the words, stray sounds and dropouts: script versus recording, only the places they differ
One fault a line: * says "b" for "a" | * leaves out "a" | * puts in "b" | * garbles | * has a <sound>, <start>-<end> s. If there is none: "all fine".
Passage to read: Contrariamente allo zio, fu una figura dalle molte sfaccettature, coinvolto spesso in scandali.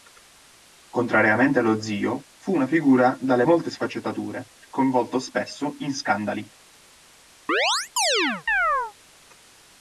* has a chirp, 7.5-8.9 s